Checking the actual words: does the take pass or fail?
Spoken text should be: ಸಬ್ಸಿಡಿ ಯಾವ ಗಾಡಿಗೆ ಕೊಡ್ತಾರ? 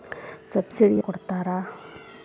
fail